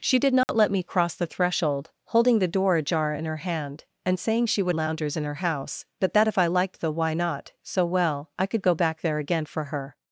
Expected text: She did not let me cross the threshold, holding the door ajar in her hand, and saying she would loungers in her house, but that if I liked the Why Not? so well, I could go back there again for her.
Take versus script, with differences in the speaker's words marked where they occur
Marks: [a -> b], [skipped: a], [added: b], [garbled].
She did not let me cross the threshold, holding the door ajar in her hand, and saying she would loungers in her house, but that if I liked the Why Not? so well, I could go back there again for her.